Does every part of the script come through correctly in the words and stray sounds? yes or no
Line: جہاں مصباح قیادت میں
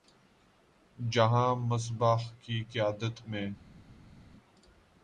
no